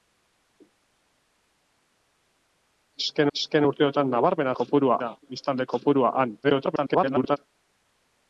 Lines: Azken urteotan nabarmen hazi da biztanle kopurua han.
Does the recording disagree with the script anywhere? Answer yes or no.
yes